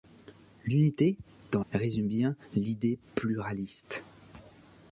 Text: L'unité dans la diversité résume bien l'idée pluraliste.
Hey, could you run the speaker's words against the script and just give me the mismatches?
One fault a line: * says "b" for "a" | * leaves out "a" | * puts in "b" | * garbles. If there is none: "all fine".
* leaves out "la diversité"